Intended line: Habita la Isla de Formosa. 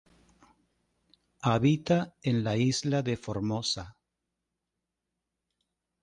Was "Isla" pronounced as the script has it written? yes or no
yes